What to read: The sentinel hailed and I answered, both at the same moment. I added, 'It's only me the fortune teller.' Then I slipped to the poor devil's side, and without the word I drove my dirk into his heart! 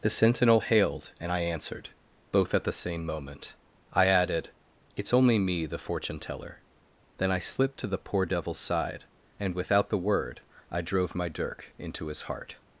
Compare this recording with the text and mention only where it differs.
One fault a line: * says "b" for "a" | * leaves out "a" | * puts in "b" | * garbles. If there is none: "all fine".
all fine